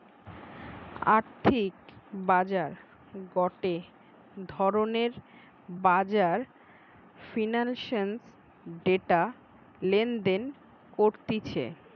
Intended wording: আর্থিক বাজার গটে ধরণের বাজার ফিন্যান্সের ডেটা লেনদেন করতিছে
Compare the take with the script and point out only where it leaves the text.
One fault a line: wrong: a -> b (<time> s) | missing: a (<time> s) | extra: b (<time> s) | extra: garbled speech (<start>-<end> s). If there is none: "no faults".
no faults